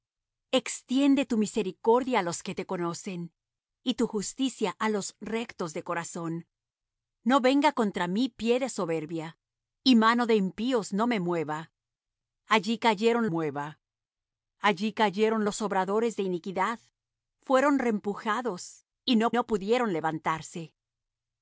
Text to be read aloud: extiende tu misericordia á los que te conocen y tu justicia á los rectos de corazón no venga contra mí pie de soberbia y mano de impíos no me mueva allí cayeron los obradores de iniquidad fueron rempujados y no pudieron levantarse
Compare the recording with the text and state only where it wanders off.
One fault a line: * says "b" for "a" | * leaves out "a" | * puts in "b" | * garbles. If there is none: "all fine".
* puts in "mueva allí cayeron"
* puts in "no"